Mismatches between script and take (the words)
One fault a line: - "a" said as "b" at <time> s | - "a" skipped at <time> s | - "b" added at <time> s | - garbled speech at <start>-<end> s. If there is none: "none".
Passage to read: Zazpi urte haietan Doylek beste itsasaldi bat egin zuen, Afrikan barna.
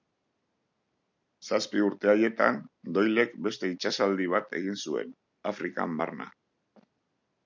none